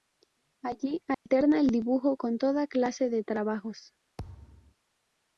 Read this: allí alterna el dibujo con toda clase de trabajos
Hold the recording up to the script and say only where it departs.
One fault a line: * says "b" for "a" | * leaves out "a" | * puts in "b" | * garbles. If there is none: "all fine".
all fine